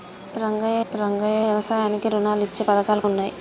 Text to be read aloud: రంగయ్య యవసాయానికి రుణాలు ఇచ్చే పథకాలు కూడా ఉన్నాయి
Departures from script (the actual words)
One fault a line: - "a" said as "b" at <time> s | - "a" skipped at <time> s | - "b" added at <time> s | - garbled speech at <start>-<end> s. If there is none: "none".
- "రంగయ్య" added at 0.9 s
- "కూడా" skipped at 3.0 s